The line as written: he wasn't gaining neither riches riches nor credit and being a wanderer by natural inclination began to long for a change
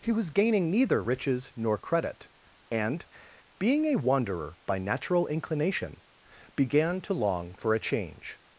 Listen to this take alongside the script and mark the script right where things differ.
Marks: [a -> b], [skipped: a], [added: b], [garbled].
he [wasn't -> was] gaining neither riches [skipped: riches] nor credit and being a wanderer by natural inclination began to long for a change